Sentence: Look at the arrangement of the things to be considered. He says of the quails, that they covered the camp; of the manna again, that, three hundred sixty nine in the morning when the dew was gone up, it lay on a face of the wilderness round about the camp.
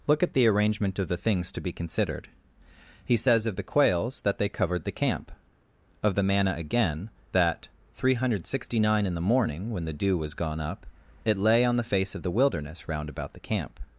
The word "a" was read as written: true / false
false